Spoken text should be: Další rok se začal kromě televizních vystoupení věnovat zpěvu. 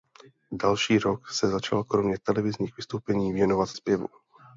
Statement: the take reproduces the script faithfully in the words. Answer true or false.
true